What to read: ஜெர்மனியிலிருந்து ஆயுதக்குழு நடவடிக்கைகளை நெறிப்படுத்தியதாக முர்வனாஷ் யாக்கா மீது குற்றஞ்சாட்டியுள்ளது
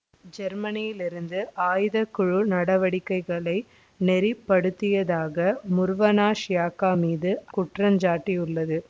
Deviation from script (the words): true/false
false